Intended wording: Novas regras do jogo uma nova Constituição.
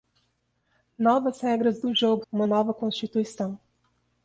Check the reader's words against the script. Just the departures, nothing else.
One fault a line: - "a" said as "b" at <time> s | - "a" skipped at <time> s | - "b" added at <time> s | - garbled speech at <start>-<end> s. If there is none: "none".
none